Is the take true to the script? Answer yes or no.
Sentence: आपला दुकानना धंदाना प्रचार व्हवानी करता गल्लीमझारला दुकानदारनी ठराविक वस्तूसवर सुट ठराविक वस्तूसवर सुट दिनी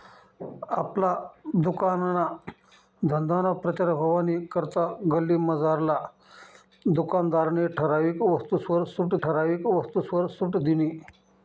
yes